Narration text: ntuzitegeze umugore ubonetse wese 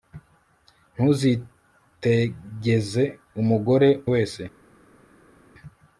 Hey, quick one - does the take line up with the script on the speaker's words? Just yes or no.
no